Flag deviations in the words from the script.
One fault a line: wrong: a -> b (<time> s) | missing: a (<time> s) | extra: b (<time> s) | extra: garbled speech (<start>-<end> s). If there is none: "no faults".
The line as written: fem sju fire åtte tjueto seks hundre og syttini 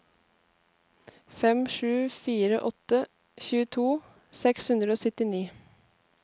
no faults